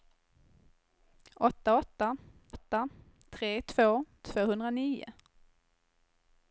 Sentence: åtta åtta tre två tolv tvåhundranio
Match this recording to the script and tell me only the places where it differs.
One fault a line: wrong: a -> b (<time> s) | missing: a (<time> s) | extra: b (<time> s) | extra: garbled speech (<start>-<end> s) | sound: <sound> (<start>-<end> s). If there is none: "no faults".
extra: åtta (2.5 s)
missing: tolv (4.0 s)